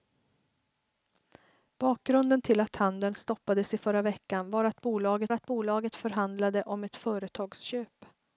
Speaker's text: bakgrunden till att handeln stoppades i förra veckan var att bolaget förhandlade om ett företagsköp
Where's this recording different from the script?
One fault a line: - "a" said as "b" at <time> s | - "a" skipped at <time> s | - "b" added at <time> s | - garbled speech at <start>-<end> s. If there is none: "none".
- "att bolaget" added at 5.3 s